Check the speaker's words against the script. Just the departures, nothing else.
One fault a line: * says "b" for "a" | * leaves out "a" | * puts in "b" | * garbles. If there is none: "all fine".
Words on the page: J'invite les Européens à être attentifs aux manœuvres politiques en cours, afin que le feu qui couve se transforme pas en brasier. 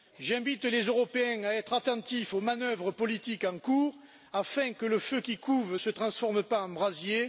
all fine